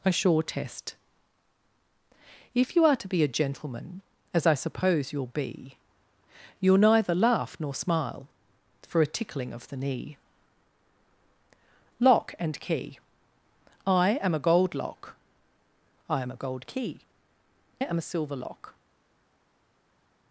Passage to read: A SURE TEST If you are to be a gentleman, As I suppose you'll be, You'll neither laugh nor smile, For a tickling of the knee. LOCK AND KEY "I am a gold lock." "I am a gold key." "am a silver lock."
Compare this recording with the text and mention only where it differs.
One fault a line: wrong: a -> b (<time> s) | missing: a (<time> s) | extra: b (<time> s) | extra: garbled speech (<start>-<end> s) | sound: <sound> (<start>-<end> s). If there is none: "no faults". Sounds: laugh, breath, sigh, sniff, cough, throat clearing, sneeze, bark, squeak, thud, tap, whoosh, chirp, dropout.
no faults